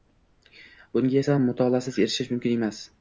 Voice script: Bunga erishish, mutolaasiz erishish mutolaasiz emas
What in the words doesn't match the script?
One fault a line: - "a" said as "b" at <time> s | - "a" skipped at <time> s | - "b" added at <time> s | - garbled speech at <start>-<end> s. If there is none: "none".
- "erishish" said as "esa" at 1.2 s
- "mutolaasiz" said as "mumkin" at 2.3 s